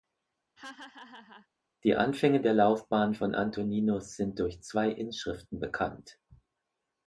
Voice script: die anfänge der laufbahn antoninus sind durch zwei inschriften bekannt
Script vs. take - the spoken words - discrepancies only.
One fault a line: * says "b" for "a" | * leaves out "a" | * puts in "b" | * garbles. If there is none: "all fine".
* puts in "von"